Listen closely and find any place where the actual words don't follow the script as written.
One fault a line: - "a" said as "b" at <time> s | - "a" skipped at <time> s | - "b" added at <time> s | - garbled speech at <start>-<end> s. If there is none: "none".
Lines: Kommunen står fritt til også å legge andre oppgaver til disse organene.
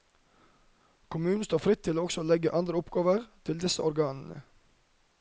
none